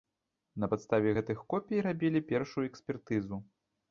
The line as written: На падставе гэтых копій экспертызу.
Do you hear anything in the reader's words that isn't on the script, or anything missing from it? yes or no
yes